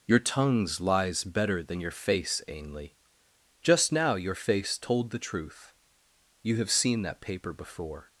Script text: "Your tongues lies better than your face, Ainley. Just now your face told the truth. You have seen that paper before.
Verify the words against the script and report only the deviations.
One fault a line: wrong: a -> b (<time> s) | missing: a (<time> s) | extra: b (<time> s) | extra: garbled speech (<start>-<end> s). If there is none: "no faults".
no faults